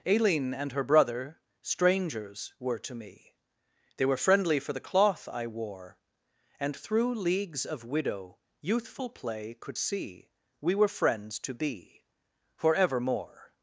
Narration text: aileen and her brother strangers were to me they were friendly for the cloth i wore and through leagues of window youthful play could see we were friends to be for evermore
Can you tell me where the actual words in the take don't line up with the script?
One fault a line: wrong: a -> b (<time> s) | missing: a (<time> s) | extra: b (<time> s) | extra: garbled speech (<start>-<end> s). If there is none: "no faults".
wrong: window -> widow (7.8 s)